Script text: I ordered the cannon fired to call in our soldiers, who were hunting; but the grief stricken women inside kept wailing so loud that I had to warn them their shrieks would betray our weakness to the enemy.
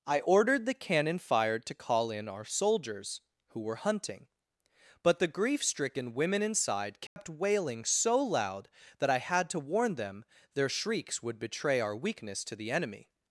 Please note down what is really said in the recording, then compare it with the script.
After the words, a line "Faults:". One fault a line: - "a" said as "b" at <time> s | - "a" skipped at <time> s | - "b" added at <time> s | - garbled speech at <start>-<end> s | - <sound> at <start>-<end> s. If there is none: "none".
I ordered the cannon fired to call in our soldiers, who were hunting; but the grief stricken women inside kept wailing so loud that I had to warn them their shrieks would betray our weakness to the enemy.
Faults:
- dropout at 7.1-7.2 s